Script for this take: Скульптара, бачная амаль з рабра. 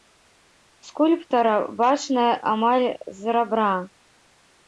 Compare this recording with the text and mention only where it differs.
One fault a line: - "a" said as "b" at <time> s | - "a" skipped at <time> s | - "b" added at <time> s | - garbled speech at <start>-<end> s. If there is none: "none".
none